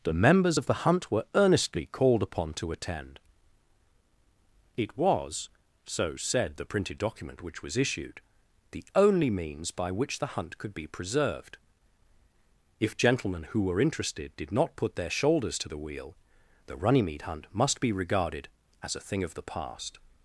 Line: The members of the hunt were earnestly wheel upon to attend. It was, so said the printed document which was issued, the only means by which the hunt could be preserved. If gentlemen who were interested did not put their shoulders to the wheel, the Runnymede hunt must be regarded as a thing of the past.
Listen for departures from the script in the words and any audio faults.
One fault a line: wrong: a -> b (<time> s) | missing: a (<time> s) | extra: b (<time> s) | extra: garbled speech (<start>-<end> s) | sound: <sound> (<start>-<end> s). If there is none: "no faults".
wrong: wheel -> called (1.9 s)